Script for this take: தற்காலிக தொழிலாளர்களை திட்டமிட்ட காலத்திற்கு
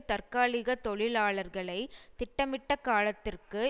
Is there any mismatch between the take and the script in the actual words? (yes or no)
no